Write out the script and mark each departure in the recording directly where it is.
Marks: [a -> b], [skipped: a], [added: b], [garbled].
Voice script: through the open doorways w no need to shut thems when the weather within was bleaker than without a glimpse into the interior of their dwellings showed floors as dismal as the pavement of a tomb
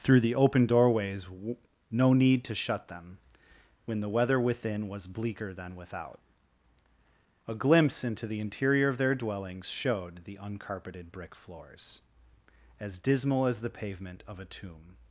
through the open doorways w no need to shut [thems -> them] when the weather within was bleaker than without a glimpse into the interior of their dwellings showed [added: the uncarpeted brick] floors as dismal as the pavement of a tomb